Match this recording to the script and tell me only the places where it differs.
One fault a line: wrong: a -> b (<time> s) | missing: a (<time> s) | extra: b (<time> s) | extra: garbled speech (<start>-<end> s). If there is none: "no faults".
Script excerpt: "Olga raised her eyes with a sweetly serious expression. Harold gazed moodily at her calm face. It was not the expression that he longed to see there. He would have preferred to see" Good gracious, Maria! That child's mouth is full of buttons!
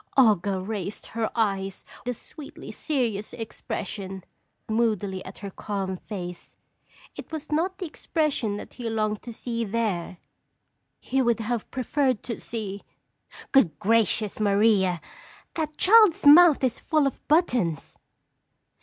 missing: with (1.9 s)
missing: Harold gazed (4.2 s)